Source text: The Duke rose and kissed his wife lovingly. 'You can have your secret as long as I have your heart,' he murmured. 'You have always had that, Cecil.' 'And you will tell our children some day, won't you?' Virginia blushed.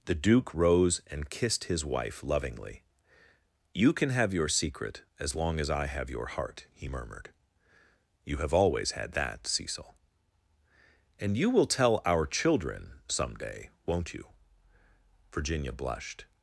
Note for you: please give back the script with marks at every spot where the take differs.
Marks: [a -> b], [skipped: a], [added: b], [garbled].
The Duke rose and kissed his wife lovingly. 'You can have your secret as long as I have your heart,' he murmured. 'You have always had that, Cecil.' 'And you will tell our children some day, won't you?' Virginia blushed.